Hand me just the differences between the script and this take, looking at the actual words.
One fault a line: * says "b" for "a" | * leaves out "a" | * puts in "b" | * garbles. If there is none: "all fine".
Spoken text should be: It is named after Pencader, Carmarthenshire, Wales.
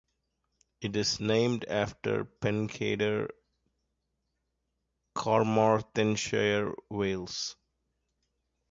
all fine